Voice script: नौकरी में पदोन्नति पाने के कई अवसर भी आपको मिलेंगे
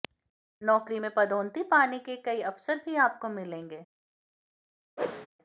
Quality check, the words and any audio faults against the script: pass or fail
fail